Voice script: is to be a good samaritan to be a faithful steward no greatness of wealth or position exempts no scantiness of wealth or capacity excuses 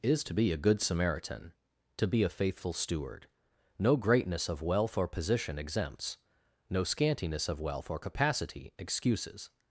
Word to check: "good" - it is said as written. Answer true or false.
true